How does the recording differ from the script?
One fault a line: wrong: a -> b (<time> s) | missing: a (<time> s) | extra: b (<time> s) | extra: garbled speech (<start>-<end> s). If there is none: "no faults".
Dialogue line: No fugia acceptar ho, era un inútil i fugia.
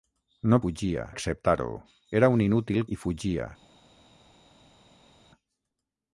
no faults